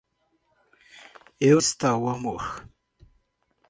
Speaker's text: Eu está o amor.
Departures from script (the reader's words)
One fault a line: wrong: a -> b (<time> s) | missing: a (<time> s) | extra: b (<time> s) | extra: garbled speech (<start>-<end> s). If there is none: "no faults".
no faults